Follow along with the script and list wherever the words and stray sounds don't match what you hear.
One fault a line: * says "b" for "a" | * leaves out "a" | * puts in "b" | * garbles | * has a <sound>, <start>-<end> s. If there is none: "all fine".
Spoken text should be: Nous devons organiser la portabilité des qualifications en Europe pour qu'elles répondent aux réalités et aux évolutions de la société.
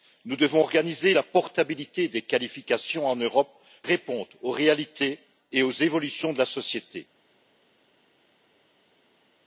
* leaves out "pour qu'elles"